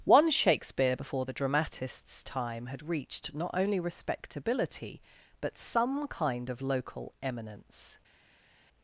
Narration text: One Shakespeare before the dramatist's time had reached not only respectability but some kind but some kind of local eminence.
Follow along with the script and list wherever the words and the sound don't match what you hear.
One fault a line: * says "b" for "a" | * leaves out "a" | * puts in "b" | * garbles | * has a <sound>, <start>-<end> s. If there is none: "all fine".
* leaves out "but some kind"